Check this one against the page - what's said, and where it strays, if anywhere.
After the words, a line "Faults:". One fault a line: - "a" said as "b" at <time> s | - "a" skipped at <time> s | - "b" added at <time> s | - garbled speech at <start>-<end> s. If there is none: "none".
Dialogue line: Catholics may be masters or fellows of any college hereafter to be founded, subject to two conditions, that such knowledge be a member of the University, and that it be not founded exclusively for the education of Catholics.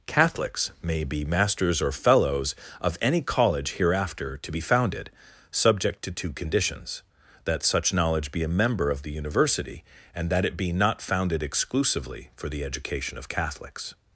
Catholics may be masters or fellows of any college hereafter to be founded, subject to two conditions, that such knowledge be a member of the University, and that it be not founded exclusively for the education of Catholics.
Faults:
none